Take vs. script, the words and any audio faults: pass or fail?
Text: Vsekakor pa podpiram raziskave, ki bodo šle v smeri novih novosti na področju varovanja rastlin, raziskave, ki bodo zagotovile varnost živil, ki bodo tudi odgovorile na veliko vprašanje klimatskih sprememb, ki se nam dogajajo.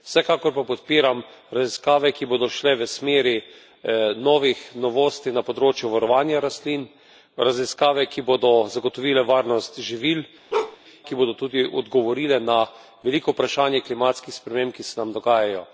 fail